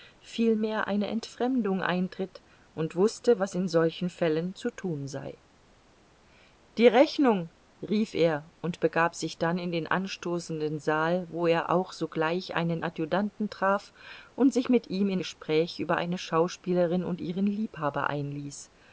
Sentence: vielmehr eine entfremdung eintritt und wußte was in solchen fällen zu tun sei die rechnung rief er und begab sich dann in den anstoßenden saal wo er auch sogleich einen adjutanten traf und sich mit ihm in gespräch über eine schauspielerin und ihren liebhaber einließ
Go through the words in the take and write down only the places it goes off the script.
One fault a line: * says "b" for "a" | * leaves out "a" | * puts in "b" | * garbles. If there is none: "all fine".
all fine